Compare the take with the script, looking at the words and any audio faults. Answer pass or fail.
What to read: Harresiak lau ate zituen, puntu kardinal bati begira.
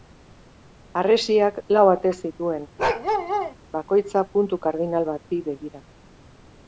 fail